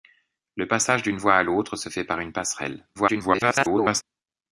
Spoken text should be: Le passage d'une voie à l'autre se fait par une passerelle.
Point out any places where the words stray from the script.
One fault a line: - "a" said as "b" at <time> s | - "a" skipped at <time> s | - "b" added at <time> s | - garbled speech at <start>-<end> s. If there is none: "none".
- garbled speech at 2.9-4.0 s